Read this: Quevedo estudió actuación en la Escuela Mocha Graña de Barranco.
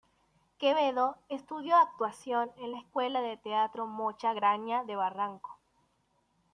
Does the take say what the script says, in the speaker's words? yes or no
no